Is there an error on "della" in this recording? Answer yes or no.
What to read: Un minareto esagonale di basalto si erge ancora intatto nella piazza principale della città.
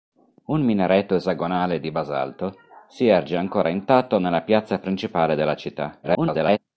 no